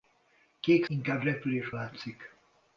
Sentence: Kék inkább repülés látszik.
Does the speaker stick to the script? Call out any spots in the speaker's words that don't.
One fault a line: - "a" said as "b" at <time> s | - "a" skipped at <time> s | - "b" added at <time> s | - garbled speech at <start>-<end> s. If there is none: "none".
none